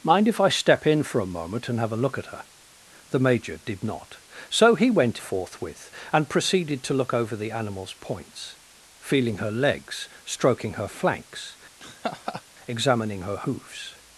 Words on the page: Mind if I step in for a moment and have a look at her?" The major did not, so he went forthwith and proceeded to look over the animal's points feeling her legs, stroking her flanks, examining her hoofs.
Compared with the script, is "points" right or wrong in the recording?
right